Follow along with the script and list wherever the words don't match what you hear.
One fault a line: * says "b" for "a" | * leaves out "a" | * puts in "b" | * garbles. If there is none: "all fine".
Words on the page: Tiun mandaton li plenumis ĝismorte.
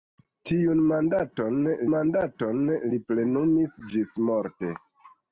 * puts in "mandaton"